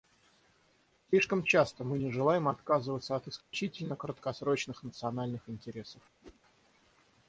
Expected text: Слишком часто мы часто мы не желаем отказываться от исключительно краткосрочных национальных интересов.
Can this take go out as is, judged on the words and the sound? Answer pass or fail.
fail